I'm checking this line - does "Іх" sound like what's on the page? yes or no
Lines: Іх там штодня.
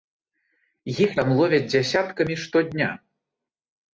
yes